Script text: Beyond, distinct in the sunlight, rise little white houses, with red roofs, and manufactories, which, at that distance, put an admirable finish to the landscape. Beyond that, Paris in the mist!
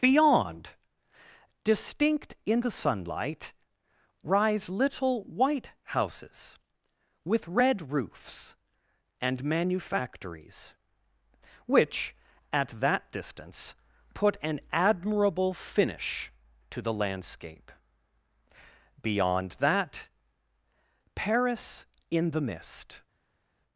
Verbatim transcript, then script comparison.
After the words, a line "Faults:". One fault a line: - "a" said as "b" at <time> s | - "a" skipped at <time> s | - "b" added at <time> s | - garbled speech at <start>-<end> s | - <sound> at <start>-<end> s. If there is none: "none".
Beyond, distinct in the sunlight, rise little white houses, with red roofs, and manufactories, which, at that distance, put an admirable finish to the landscape. Beyond that, Paris in the mist!
Faults:
none